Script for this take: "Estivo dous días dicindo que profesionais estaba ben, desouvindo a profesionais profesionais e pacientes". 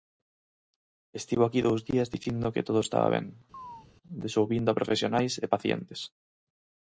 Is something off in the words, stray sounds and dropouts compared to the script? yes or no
yes